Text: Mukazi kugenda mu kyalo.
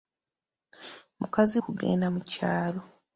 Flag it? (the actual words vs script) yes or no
no